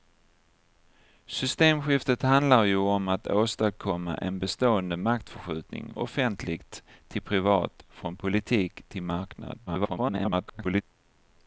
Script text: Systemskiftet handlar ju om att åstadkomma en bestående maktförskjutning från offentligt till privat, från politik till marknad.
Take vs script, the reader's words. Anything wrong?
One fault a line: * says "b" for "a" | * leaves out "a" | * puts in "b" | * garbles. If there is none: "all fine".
* leaves out "från"
* garbles